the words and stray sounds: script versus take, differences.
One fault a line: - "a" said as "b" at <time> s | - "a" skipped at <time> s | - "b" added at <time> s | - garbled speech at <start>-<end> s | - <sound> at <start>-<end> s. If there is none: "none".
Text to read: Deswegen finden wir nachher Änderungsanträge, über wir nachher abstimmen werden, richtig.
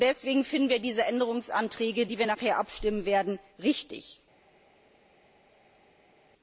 - "nachher" said as "diese" at 0.8 s
- "die" added at 2.1 s